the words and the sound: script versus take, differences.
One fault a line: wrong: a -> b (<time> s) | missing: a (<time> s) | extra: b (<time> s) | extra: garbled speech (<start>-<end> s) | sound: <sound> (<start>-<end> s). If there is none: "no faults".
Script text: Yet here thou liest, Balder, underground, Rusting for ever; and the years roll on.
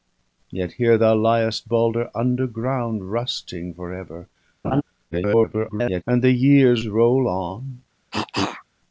sound: laugh (4.6-4.8 s)
extra: garbled speech (5.1-6.0 s)
sound: cough (8.1-8.6 s)